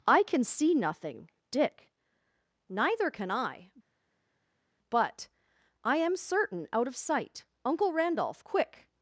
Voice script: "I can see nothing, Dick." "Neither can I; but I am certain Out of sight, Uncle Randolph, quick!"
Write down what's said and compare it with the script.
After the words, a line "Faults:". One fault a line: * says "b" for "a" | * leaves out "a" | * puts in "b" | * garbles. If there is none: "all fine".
"I can see nothing, Dick." "Neither can I; but I am certain Out of sight, Uncle Randolph, quick!"
Faults:
all fine